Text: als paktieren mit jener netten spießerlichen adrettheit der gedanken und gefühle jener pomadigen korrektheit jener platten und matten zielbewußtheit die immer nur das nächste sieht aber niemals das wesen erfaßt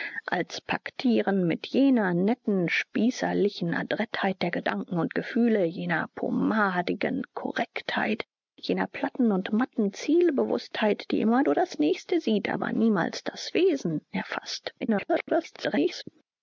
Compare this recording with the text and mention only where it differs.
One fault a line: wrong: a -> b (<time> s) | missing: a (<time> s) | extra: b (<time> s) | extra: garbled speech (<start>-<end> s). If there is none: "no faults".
extra: garbled speech (14.8-16.0 s)